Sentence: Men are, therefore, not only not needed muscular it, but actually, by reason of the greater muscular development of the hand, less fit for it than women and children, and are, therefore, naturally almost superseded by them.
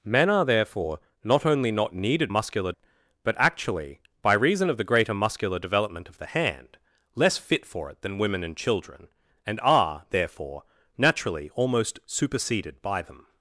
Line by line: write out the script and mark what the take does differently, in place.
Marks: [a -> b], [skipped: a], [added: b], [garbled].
Men are, therefore, not only not needed muscular it, but actually, by reason of the greater muscular development of the hand, less fit for it than women and children, and are, therefore, naturally almost superseded by them.